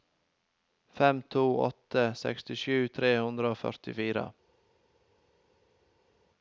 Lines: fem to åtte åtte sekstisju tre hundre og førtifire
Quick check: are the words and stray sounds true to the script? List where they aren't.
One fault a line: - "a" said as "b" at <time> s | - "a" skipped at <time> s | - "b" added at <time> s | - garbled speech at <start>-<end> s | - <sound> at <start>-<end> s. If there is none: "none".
none